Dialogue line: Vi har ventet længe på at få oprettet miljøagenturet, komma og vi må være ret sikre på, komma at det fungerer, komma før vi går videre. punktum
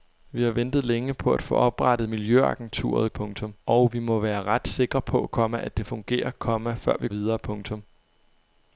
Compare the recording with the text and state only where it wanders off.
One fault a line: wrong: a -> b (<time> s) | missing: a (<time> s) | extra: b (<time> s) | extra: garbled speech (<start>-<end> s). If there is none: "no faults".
wrong: komma -> punktum (3.1 s)
missing: går (7.1 s)